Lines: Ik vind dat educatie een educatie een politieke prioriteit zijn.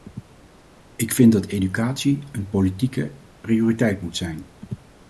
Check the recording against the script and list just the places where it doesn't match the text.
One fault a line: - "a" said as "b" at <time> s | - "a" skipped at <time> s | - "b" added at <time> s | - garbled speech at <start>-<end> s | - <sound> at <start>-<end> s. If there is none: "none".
- "educatie een" skipped at 2.5 s
- "moet" added at 4.0 s